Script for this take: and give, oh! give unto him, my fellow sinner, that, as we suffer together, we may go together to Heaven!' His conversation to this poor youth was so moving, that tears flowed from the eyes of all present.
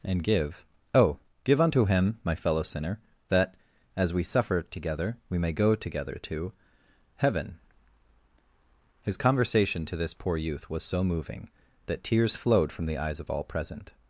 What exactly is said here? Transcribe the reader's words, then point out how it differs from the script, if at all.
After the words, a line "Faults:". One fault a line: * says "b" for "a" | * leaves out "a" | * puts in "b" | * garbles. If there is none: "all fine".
and give, oh! give unto him, my fellow sinner, that, as we suffer together, we may go together to Heaven!' His conversation to this poor youth was so moving, that tears flowed from the eyes of all present.
Faults:
all fine